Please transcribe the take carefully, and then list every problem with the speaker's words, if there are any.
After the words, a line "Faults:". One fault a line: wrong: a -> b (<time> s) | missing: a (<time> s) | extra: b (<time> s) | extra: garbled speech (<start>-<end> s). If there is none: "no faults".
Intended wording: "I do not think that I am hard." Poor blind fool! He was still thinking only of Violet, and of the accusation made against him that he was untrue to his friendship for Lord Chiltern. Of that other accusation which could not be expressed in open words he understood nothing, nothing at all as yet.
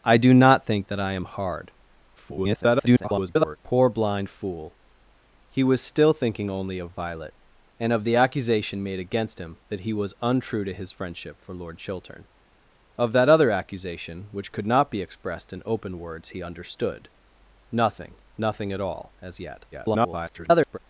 "I do not think that I am hard." [garbled] Poor blind fool! He was still thinking only of Violet, and of the accusation made against him that he was untrue to his friendship for Lord Chiltern. Of that other accusation which could not be expressed in open words he understood nothing, nothing at all as yet. [garbled]
Faults:
extra: garbled speech (2.2-3.6 s)
extra: garbled speech (19.7-20.8 s)